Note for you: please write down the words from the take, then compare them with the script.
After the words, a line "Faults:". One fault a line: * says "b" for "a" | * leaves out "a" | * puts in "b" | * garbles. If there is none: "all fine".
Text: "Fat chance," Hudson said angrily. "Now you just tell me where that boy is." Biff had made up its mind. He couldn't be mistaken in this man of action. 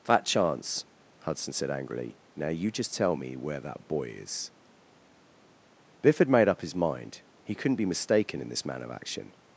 "Fat chance," Hudson said angrily. "Now you just tell me where that boy is." Biff had made up his mind. He couldn't be mistaken in this man of action.
Faults:
* says "his" for "its"